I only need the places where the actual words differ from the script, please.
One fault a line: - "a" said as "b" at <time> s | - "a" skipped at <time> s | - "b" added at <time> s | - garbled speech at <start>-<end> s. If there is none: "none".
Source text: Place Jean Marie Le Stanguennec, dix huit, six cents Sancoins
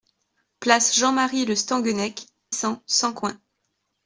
- "dix huit six" skipped at 2.2 s